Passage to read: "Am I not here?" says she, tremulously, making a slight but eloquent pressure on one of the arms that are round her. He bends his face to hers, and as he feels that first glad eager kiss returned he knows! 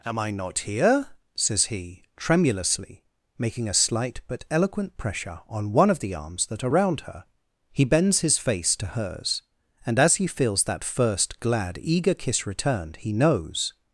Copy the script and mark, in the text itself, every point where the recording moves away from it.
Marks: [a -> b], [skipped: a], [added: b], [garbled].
"Am I not here?" says [she, -> he] tremulously, making a slight but eloquent pressure on one of the arms that are round her. He bends his face to hers, and as he feels that first glad eager kiss returned he knows!